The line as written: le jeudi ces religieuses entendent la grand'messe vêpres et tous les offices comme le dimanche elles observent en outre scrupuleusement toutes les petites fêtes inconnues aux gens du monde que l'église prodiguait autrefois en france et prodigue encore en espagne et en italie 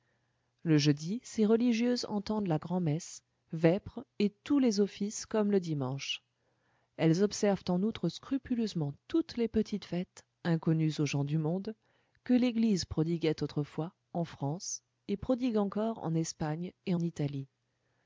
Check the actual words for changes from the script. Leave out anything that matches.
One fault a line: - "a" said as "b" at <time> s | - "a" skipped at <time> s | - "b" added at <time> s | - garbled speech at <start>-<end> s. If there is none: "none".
- "en" skipped at 16.9 s